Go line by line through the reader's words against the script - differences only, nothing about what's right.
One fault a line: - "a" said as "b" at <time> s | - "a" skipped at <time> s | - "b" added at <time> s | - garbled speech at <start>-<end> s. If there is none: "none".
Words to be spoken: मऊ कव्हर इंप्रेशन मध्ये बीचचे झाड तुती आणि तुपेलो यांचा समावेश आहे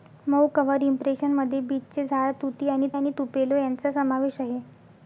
- "आणि" added at 2.9 s